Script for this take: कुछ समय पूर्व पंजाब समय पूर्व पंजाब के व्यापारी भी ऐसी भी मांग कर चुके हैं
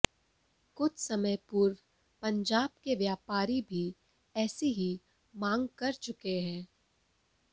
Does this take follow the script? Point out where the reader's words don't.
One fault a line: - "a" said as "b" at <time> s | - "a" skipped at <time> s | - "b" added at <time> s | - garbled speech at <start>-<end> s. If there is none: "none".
- "समय पूर्व पंजाब" skipped at 2.7 s
- "भी" said as "ही" at 4.7 s